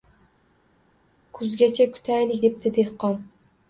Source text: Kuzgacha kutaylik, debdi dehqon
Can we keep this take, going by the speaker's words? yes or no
yes